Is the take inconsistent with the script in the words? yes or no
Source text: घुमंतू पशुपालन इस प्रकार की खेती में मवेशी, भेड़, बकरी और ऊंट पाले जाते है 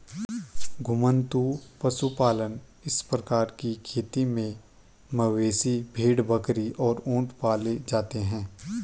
no